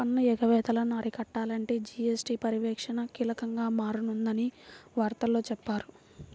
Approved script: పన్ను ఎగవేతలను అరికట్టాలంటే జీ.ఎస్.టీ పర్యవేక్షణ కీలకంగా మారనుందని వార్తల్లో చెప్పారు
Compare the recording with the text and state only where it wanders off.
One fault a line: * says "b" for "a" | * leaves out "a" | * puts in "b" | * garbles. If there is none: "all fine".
all fine